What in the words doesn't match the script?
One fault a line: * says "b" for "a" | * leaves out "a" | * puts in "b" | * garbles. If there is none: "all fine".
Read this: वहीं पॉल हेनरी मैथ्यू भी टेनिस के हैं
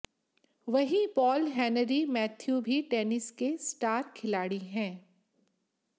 * puts in "स्टार खिलाड़ी"